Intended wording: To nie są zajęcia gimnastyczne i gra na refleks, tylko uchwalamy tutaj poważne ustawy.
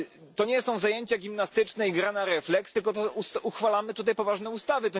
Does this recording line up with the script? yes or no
yes